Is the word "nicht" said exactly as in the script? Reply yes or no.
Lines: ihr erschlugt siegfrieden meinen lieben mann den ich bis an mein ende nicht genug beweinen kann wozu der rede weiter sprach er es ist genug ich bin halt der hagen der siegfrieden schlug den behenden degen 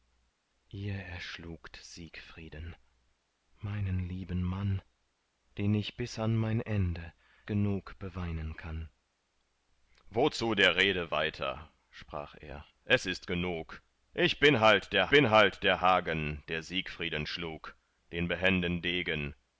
no